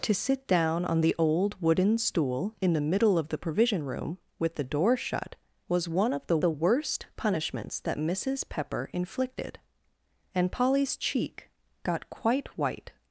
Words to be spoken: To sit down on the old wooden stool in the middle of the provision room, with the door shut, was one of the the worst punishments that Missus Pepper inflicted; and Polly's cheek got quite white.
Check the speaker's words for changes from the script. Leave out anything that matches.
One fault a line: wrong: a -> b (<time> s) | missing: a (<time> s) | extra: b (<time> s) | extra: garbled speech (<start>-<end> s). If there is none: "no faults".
no faults